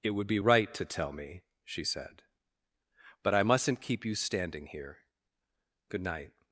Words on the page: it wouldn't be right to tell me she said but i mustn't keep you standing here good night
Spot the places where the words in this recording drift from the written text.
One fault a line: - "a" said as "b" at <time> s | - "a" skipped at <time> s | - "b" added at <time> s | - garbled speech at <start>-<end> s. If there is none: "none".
- "wouldn't" said as "would" at 0.1 s